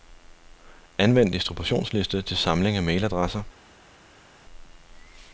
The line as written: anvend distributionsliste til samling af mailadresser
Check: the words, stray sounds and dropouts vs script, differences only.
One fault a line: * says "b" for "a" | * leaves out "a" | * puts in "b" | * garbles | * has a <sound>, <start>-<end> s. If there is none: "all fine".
all fine